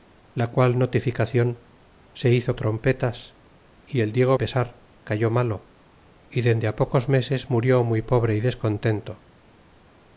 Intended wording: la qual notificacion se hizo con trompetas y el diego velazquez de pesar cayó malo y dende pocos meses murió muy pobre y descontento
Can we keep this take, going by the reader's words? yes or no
no